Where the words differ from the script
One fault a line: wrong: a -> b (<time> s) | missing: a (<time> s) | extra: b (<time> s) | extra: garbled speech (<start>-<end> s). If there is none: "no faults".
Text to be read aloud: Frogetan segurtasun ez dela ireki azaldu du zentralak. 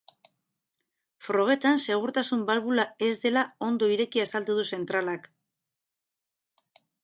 extra: balbula (2.5 s)
extra: ondo (3.7 s)